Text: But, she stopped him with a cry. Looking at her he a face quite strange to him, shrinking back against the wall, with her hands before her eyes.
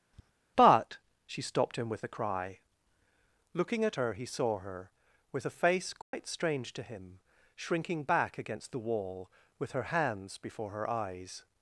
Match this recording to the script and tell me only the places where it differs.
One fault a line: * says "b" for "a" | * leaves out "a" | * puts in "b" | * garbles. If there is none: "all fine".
* puts in "saw her with"